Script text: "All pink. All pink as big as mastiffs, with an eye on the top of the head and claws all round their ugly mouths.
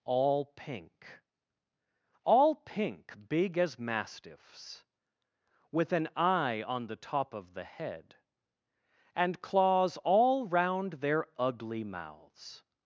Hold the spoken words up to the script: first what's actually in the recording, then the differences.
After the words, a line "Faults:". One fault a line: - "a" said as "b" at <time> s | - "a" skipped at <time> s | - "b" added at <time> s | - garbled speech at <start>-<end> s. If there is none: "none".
"All pink. All pink big as mastiffs, with an eye on the top of the head and claws all round their ugly mouths.
Faults:
- "as" skipped at 3.3 s